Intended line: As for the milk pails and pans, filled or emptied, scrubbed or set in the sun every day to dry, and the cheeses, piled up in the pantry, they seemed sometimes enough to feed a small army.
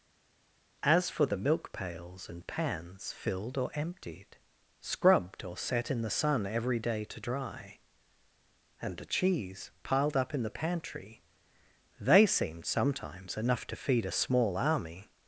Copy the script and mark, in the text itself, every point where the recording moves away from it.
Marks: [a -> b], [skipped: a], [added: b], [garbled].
As for the milk pails and pans, filled or emptied, scrubbed or set in the sun every day to dry, and the [cheeses, -> cheese] piled up in the pantry, they seemed sometimes enough to feed a small army.